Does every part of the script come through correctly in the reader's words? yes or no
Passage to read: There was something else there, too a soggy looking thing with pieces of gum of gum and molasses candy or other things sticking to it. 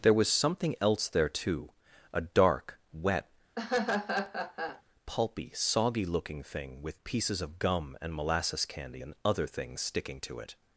no